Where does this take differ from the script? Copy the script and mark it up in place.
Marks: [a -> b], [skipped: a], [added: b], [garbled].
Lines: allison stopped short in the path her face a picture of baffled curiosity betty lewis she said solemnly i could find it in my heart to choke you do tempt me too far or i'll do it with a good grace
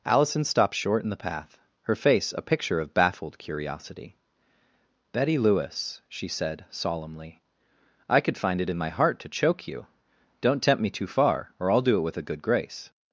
allison stopped short in the path her face a picture of baffled curiosity betty lewis she said solemnly i could find it in my heart to choke you [do -> don't] tempt me too far or i'll do it with a good grace